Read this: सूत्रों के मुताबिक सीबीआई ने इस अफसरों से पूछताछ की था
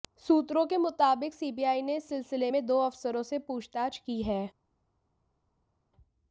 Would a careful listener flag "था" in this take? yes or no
yes